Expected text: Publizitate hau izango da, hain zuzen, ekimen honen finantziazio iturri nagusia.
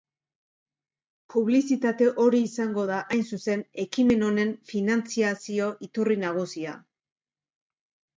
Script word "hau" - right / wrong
wrong